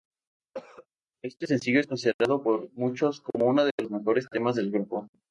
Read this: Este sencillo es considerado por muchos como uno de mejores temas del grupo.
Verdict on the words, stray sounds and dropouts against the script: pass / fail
fail